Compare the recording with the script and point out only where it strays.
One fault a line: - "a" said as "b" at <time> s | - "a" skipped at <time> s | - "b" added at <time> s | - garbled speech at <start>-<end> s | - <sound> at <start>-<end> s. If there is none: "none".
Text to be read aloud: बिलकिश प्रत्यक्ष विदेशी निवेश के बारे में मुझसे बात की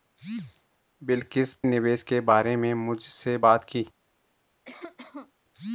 - "प्रत्यक्ष विदेशी" skipped at 1.5 s
- cough at 4.6-5.3 s